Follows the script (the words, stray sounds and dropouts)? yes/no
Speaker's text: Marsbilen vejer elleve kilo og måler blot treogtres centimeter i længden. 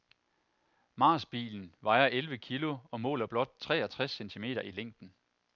yes